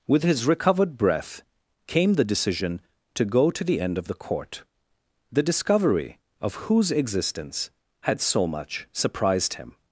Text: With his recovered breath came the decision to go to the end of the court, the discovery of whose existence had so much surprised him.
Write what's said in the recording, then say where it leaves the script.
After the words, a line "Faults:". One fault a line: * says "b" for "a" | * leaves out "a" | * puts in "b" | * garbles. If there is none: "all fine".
With his recovered breath came the decision to go to the end of the court, the discovery of whose existence had so much surprised him.
Faults:
all fine